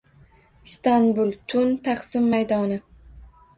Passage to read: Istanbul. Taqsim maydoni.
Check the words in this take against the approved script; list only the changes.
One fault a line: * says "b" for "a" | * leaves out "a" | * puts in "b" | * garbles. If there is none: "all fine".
* puts in "Tun"